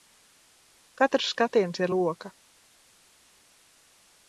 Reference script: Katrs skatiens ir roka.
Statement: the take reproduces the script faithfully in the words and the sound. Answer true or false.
true